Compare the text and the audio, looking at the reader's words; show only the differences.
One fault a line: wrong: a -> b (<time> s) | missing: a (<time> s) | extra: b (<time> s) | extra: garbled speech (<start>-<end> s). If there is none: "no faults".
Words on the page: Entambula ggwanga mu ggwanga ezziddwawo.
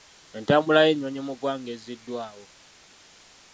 wrong: ggwanga -> y'ennyonyi (0.9 s)